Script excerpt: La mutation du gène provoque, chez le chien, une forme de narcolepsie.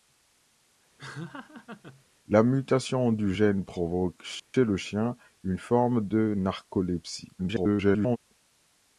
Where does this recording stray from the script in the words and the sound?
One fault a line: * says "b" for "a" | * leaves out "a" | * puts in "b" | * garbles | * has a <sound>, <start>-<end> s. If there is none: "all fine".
* has a laugh, 1.0-2.1 s
* has a dropout, 4.4-4.5 s
* garbles